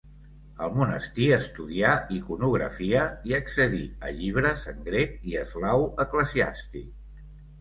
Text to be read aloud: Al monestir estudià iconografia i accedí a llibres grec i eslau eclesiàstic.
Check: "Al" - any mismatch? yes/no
no